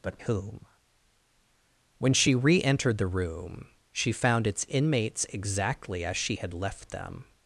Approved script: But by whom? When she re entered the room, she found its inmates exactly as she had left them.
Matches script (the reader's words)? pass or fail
fail